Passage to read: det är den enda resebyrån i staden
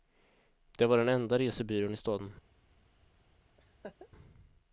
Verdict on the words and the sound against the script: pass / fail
fail